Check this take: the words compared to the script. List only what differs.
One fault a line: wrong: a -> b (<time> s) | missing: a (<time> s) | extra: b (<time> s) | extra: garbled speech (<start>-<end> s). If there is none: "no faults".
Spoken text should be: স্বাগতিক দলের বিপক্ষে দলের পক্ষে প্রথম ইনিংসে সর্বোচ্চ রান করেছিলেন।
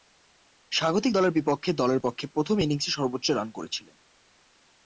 no faults